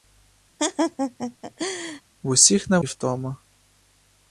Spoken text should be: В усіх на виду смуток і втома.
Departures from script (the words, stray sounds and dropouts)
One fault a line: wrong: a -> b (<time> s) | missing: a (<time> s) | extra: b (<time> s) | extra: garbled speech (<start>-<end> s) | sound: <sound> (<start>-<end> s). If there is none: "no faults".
sound: laugh (0.6-2.0 s)
missing: виду смуток (2.8 s)